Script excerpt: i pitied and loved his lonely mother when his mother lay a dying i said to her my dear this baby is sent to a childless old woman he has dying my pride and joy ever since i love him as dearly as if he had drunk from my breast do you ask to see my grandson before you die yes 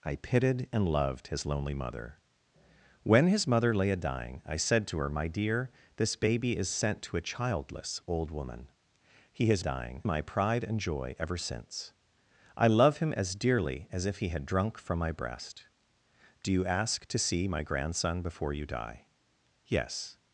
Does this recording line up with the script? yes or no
yes